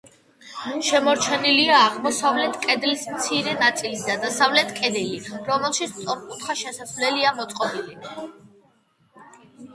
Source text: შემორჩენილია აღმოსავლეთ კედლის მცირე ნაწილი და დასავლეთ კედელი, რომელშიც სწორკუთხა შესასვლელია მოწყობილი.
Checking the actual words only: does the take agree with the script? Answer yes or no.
yes